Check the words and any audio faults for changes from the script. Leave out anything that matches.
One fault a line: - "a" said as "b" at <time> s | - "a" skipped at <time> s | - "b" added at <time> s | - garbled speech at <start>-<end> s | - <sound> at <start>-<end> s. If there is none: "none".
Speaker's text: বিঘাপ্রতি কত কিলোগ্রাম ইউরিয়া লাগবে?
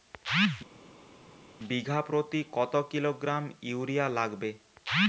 none